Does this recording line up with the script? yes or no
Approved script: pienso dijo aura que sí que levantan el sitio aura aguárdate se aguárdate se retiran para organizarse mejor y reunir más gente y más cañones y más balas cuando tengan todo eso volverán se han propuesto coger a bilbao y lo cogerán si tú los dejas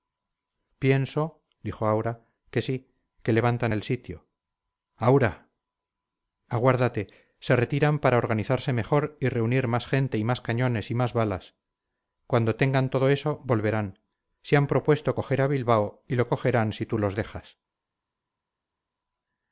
no